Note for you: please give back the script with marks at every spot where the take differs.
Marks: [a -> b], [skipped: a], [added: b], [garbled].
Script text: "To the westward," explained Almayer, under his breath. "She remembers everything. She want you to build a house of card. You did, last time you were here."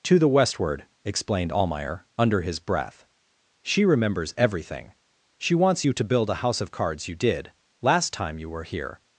"To the westward," explained Almayer, under his breath. "She remembers everything. She [want -> wants] you to build a house of [card. -> cards] You did, last time you were here."